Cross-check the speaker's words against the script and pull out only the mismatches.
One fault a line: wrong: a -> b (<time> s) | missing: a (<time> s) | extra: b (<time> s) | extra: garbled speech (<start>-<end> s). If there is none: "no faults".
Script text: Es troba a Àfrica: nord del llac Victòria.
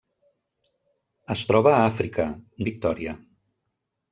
missing: nord del llac (2.3 s)